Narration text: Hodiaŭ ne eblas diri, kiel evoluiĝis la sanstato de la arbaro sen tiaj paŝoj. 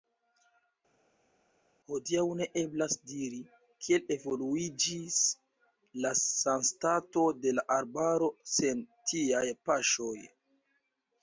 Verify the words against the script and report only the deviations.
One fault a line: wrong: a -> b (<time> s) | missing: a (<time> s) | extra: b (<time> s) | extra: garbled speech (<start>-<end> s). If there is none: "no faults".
no faults